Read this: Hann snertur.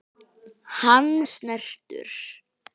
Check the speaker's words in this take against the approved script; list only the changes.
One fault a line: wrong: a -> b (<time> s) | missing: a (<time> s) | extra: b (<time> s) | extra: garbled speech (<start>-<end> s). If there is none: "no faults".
no faults